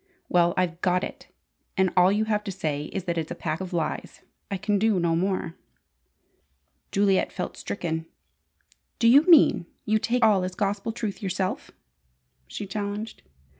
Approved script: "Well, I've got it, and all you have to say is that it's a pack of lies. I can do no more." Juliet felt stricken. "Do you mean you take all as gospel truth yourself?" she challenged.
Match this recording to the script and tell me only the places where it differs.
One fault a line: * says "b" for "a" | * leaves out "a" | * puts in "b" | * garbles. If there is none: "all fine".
all fine